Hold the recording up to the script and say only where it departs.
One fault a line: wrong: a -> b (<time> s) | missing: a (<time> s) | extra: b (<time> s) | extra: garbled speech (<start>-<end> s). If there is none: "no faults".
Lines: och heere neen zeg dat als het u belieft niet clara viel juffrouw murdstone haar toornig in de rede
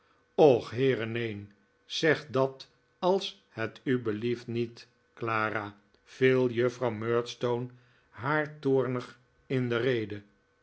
no faults